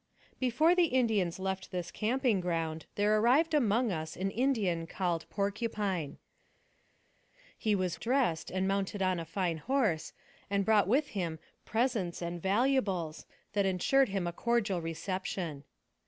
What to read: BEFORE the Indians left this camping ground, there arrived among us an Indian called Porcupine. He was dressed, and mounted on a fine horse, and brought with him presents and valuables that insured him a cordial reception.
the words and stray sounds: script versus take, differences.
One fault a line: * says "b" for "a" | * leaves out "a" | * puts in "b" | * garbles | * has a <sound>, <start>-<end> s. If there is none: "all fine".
all fine